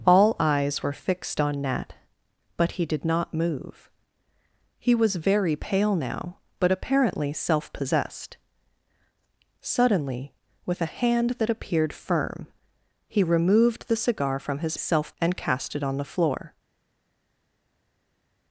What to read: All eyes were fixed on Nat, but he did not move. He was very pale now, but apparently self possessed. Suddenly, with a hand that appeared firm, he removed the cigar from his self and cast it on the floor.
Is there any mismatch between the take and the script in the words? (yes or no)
no